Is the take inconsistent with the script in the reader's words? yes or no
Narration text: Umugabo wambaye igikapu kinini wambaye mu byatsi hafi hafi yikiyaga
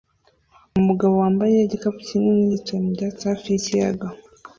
yes